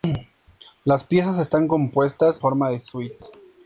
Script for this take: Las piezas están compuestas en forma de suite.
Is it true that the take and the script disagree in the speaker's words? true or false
true